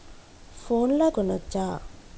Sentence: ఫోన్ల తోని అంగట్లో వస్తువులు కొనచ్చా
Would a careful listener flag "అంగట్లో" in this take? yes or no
yes